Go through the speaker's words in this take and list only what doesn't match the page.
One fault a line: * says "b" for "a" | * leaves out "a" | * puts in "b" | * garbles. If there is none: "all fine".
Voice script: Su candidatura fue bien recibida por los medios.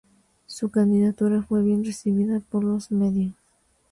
all fine